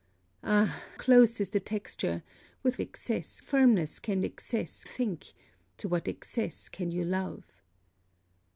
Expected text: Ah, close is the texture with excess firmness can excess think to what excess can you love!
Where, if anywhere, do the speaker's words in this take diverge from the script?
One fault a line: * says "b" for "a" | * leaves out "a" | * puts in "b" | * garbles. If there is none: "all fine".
all fine